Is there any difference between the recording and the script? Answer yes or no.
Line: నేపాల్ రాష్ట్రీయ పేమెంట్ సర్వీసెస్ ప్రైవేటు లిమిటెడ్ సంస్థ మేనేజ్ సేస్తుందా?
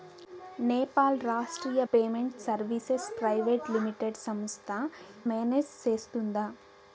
no